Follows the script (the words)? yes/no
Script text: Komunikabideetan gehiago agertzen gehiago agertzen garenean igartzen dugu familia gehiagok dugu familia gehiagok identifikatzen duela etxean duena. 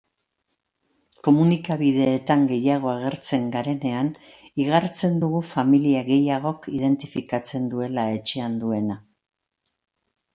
no